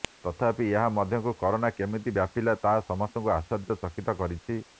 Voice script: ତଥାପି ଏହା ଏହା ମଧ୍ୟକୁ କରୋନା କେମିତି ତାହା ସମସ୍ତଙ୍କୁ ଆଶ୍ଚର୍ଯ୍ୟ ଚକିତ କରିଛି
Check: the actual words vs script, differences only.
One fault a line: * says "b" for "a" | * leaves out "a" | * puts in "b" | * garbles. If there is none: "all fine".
* leaves out "ଏହା"
* puts in "ବ୍ୟାପିଲା"